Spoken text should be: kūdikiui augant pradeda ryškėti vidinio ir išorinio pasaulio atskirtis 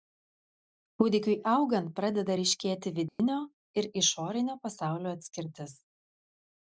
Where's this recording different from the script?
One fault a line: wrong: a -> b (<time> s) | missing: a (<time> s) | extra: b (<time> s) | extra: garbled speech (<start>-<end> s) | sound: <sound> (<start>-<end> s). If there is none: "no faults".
sound: dropout (3.1-3.2 s)